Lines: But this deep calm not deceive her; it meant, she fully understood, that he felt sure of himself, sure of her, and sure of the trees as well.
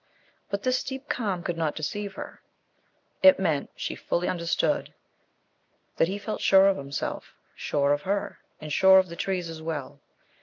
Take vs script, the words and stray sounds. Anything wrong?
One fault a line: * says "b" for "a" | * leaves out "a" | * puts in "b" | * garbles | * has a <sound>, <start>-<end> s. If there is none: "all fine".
* puts in "could"